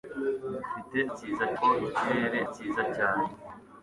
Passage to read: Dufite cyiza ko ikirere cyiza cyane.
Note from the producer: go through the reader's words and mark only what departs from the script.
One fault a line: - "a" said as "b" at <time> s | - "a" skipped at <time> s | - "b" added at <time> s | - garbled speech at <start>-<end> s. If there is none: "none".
none